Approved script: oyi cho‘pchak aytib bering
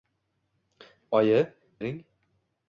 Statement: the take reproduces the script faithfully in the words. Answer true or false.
false